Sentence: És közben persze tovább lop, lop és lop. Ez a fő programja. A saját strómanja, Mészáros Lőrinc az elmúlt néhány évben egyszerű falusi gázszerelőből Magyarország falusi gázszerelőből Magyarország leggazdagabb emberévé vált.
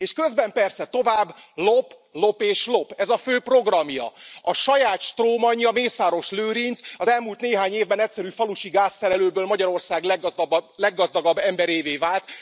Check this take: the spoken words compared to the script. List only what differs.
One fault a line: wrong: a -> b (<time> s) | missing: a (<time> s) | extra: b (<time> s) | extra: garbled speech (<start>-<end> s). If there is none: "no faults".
missing: falusi gázszerelőből Magyarország (10.0 s)